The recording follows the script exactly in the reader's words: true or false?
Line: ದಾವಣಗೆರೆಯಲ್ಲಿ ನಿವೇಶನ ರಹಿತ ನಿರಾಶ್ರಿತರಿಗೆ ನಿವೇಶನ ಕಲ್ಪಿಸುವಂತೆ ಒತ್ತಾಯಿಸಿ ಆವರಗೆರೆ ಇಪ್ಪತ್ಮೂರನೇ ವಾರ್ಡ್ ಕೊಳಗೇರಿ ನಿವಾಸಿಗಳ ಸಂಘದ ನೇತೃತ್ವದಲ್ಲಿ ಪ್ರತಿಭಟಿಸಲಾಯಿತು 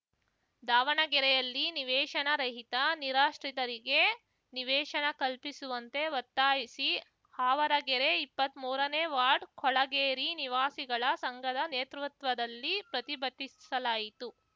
true